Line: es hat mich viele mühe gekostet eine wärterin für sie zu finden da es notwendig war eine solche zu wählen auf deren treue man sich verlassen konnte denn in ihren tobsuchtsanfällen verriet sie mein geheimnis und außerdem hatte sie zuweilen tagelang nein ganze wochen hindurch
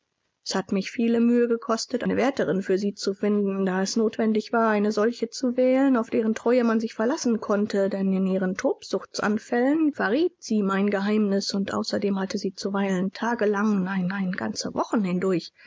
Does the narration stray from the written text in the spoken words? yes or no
yes